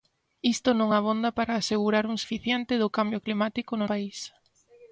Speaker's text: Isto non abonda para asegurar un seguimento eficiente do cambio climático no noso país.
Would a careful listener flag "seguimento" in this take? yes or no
yes